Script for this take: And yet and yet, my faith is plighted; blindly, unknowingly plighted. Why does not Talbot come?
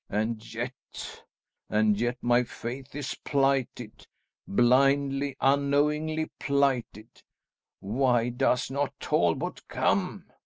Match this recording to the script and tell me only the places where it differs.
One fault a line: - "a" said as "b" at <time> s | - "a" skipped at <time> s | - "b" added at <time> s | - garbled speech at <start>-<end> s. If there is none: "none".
none